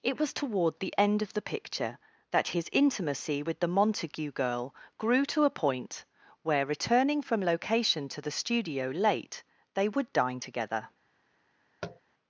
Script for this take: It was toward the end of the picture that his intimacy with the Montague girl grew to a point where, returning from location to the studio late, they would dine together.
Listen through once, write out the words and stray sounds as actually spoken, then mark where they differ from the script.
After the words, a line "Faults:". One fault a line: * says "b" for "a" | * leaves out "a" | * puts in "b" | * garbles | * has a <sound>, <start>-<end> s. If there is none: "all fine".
It was toward the end of the picture that his intimacy with the Montague girl grew to a point where, returning from location to the studio late, they would dine together.
Faults:
* has a tap, 11.8-12.0 s